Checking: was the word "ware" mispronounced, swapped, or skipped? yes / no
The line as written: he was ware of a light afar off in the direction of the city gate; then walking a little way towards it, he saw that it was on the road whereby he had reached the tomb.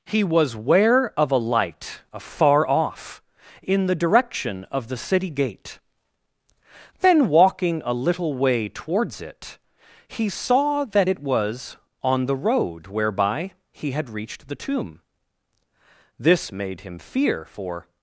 no